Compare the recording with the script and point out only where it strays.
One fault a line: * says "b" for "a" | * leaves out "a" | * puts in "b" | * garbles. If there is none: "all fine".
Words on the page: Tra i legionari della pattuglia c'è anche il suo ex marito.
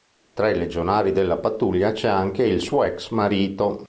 all fine